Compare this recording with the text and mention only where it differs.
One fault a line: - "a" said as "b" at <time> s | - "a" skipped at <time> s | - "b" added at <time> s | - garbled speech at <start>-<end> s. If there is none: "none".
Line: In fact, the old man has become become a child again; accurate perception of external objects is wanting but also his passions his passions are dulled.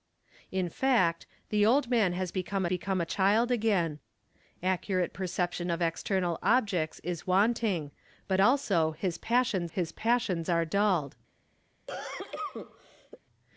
none